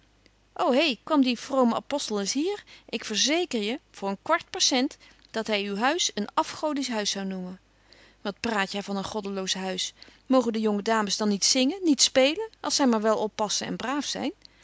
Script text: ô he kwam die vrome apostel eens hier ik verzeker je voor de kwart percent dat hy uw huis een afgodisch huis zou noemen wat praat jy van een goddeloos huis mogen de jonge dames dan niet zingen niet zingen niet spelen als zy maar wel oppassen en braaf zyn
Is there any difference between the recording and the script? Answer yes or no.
yes